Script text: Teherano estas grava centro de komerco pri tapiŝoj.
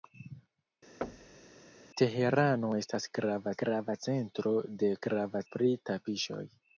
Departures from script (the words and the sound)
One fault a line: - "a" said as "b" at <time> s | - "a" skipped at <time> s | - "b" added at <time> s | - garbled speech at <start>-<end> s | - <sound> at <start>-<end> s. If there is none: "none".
- thud at 1.0-1.6 s
- "grava" added at 3.6 s
- "komerco" said as "grava" at 5.1 s